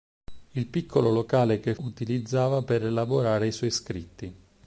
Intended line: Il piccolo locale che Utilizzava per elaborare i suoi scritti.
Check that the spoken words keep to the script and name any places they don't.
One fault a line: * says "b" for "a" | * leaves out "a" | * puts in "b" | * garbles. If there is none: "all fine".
all fine